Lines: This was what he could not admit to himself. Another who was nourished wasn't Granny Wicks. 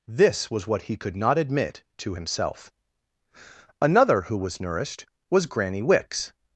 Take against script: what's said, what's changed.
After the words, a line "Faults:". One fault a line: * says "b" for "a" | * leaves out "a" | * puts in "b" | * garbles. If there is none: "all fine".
This was what he could not admit to himself. Another who was nourished was Granny Wicks.
Faults:
* says "was" for "wasn't"